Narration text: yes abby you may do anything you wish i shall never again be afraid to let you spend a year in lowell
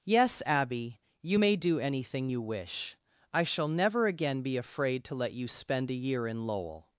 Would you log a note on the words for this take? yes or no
no